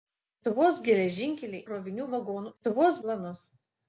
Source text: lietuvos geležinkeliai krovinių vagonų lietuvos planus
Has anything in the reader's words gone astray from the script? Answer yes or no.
no